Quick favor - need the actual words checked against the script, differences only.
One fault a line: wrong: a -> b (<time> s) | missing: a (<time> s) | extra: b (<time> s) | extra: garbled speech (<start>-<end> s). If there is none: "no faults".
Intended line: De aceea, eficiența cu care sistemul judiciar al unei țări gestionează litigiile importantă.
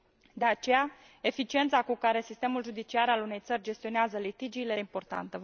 no faults